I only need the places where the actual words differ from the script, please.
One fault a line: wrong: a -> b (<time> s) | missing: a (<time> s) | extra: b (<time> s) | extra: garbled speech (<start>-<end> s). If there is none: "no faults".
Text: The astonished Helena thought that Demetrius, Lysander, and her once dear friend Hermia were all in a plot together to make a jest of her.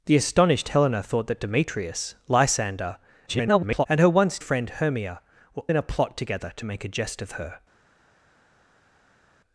extra: garbled speech (3.3-3.9 s)
missing: dear (4.4 s)
missing: all (5.6 s)